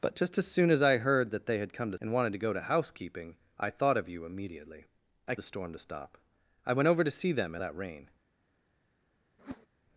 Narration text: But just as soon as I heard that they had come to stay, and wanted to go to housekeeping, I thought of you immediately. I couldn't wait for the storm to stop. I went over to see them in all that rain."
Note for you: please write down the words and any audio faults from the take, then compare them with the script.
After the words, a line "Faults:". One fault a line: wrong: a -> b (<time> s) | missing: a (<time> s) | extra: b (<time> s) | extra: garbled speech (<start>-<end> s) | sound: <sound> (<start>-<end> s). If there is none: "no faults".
But just as soon as I heard that they had come to and wanted to go to housekeeping, I thought of you immediately. I the storm to stop. I went over to see them in that rain."
Faults:
missing: stay (2.0 s)
missing: couldn't wait for (5.4 s)
missing: all (7.6 s)
sound: whoosh (9.4-9.7 s)